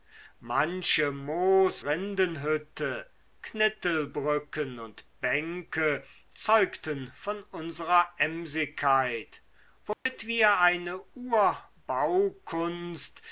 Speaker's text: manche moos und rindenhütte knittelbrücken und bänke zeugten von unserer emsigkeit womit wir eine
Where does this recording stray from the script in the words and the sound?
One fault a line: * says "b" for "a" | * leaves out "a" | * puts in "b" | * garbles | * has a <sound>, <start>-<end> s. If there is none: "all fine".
* leaves out "und"
* has a dropout, 9.9-10.1 s